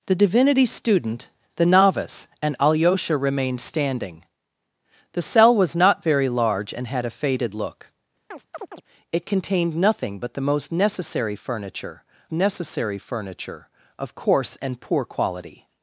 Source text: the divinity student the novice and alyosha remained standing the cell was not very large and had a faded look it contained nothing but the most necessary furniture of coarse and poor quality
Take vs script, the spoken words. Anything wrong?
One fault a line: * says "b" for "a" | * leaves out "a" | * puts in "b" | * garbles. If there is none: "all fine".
* puts in "necessary furniture"